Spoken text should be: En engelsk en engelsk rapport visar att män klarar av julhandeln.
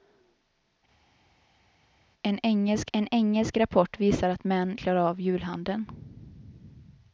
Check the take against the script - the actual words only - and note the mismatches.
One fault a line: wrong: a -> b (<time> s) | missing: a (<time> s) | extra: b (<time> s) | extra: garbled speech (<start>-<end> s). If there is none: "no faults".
no faults